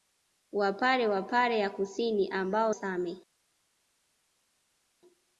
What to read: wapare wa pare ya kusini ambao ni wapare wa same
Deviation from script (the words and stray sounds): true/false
true